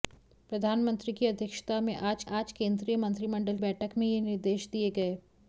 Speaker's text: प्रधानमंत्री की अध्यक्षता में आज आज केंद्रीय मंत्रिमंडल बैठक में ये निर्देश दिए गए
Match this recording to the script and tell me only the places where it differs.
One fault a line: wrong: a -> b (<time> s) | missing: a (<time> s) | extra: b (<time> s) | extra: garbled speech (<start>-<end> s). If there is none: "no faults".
no faults